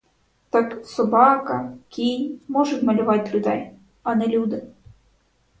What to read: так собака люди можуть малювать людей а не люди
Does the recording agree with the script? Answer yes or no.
no